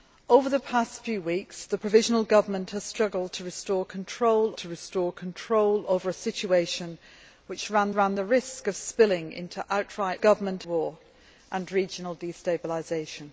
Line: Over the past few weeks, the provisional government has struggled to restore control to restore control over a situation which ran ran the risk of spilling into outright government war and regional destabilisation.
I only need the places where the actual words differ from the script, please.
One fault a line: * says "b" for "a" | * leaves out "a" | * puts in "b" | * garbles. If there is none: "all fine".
all fine